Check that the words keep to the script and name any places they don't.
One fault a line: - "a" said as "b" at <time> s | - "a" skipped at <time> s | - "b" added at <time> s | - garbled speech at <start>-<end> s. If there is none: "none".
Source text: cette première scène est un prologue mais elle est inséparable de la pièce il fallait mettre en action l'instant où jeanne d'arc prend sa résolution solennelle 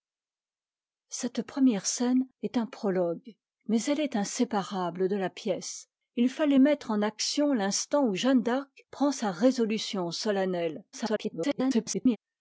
- garbled speech at 10.9-12.2 s